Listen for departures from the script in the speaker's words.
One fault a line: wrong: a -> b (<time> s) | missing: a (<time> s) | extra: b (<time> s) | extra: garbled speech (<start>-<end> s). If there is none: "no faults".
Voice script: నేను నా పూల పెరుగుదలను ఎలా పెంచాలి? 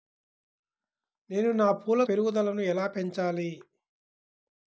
no faults